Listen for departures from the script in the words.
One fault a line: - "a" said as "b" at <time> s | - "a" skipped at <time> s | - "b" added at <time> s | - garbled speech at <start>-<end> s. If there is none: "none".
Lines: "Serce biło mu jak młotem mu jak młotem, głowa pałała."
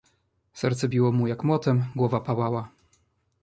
- "mu jak młotem" skipped at 1.8 s